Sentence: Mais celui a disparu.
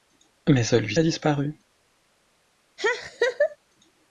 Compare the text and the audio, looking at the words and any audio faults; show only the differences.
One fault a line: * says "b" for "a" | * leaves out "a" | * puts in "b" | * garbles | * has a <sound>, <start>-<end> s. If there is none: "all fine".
* has a laugh, 2.8-3.6 s